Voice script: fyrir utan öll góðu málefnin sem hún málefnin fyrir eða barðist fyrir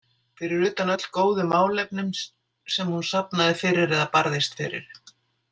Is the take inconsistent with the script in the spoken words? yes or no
yes